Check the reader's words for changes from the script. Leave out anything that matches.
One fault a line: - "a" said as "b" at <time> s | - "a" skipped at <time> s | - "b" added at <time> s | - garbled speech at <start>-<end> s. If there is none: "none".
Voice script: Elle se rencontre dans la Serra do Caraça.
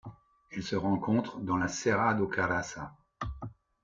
none